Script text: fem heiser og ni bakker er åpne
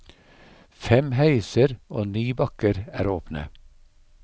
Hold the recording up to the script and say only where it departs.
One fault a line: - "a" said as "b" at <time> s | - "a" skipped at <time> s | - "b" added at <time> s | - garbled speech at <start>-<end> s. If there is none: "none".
none